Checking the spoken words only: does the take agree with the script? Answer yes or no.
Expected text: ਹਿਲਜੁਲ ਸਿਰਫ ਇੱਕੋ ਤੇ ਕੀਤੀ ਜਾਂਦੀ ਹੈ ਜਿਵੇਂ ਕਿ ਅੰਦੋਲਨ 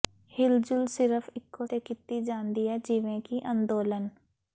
yes